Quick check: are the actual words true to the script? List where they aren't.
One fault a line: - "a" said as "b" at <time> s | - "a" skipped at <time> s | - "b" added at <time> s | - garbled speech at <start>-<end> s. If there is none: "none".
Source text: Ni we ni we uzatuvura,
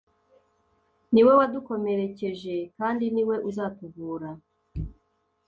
- "wadukomerekeje kandi" added at 1.4 s